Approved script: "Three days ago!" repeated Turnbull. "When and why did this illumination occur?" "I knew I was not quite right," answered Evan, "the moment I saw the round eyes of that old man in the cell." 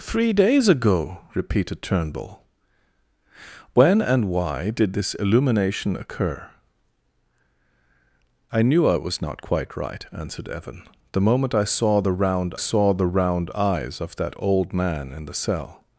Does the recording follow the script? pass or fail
fail